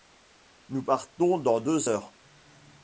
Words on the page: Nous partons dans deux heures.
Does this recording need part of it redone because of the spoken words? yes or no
no